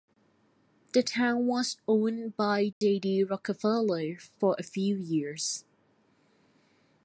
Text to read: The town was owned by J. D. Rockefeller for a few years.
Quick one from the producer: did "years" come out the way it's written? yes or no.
yes